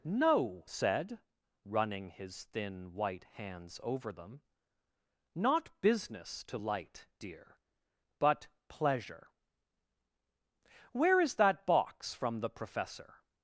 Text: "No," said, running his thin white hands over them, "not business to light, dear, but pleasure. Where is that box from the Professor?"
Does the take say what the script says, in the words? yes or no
yes